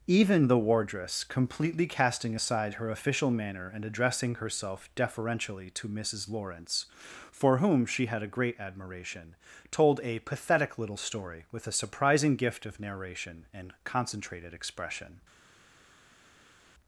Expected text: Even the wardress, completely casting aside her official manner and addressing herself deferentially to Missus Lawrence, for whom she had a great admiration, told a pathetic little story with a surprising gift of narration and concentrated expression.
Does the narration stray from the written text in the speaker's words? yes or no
no